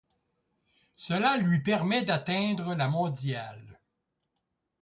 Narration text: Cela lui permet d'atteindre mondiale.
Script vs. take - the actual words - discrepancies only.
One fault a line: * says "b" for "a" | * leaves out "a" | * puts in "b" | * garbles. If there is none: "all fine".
* puts in "la"